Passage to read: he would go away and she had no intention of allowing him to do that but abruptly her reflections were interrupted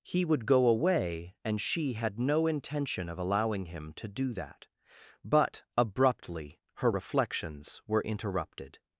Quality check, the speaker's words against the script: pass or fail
pass